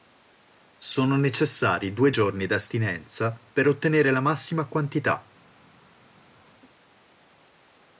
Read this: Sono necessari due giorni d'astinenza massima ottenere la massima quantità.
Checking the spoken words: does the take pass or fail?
fail